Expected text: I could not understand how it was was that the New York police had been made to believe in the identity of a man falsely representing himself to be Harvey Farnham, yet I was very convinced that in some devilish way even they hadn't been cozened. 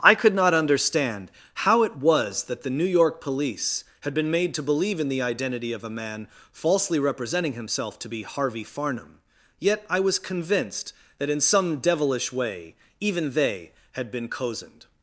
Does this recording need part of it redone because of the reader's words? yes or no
yes